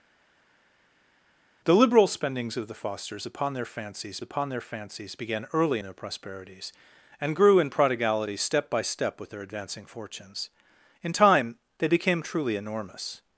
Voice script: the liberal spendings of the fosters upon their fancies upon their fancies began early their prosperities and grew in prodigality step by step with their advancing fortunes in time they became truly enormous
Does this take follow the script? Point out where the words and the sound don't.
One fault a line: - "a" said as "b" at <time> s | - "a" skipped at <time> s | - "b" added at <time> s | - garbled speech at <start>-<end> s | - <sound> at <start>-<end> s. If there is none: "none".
none